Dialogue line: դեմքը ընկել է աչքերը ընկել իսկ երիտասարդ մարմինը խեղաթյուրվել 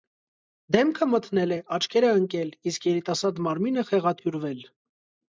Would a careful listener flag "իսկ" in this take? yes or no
no